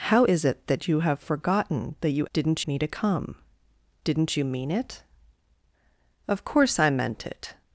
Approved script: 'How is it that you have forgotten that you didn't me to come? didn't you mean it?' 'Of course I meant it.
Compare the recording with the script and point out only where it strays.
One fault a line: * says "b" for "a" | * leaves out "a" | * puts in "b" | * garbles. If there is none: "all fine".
all fine